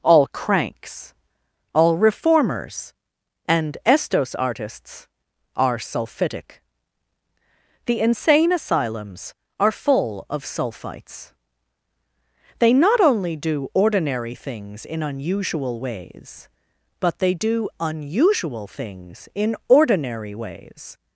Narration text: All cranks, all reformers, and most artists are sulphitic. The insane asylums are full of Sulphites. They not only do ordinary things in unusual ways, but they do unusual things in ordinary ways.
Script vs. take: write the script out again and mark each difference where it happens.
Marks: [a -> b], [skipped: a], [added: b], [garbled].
All cranks, all reformers, and [most -> estos] artists are sulphitic. The insane asylums are full of Sulphites. They not only do ordinary things in unusual ways, but they do unusual things in ordinary ways.